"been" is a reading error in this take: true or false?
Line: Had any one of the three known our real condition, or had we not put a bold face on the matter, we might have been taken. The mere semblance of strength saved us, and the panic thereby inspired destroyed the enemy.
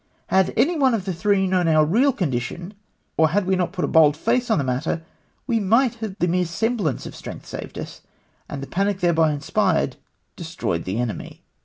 true